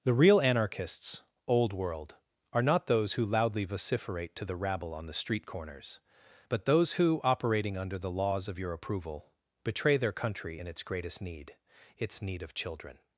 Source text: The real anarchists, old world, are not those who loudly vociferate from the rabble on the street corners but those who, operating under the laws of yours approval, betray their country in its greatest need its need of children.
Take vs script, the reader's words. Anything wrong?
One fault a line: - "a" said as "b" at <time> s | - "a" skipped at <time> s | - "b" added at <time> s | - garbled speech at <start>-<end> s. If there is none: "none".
- "from" said as "to" at 4.3 s
- "yours" said as "your" at 8.6 s